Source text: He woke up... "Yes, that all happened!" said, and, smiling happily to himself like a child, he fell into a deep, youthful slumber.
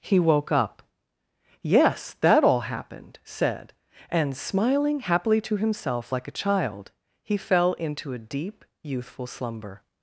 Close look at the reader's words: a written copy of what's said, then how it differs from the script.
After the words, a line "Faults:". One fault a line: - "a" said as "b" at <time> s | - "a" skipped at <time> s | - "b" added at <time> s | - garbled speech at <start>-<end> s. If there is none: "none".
He woke up... "Yes, that all happened!" said, and, smiling happily to himself like a child, he fell into a deep, youthful slumber.
Faults:
none